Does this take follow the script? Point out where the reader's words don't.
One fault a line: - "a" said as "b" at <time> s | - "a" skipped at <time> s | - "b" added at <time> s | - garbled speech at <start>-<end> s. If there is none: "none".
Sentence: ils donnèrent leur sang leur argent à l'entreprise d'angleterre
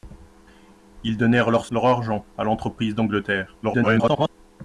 - "sang" skipped at 1.7 s
- garbled speech at 3.6-4.3 s